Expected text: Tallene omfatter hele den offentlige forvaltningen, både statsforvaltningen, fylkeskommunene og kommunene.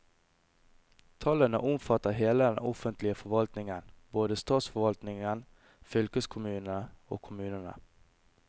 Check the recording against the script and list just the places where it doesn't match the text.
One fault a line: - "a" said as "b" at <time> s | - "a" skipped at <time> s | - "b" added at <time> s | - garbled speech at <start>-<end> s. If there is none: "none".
none